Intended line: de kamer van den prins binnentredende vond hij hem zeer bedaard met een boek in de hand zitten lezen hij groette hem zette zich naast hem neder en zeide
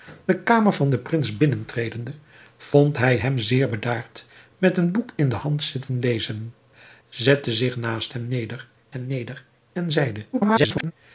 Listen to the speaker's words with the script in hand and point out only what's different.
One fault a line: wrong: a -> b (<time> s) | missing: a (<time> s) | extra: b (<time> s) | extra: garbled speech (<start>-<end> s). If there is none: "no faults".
missing: hij groette hem (6.5 s)
extra: hem neder (8.9 s)
extra: garbled speech (10.3-10.9 s)